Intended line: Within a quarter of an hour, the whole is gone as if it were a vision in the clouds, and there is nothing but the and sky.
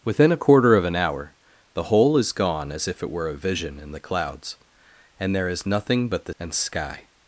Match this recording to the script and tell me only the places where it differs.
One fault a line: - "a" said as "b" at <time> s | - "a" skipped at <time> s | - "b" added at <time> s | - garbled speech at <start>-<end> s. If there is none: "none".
none